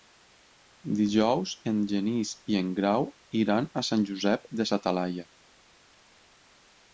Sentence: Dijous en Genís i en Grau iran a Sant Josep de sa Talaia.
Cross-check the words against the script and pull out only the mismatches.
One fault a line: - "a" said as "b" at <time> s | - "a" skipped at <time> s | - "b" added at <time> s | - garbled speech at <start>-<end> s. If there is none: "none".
none